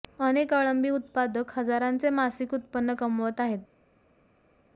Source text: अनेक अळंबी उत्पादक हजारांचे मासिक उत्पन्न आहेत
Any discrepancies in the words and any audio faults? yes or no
yes